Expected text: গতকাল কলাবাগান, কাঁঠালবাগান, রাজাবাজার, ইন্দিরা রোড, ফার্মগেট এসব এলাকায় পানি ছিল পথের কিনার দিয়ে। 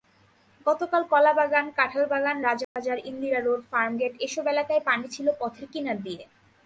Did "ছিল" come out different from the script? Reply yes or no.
no